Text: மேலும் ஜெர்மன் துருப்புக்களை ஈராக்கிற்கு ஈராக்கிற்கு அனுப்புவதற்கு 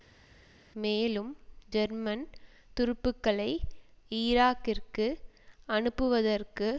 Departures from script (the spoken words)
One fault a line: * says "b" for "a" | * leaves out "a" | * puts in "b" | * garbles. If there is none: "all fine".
* leaves out "ஈராக்கிற்கு"